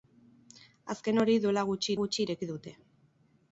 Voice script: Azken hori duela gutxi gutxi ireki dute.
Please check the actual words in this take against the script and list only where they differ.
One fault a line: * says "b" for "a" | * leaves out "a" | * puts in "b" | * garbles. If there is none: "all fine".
all fine